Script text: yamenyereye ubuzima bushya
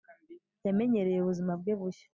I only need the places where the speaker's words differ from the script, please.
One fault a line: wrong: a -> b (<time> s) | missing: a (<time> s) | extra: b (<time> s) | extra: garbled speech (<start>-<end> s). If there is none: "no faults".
extra: bwe (1.6 s)